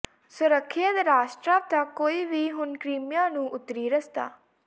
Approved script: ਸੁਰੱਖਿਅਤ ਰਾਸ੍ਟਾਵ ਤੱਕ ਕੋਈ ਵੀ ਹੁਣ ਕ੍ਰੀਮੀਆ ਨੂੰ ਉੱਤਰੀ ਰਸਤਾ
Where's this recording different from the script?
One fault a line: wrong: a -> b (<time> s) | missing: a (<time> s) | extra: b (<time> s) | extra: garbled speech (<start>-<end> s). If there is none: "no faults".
no faults